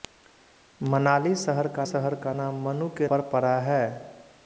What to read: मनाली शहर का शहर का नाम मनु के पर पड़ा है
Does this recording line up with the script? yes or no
yes